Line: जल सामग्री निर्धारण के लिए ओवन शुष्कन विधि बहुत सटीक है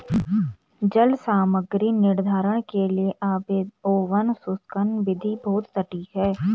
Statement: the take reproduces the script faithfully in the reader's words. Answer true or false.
true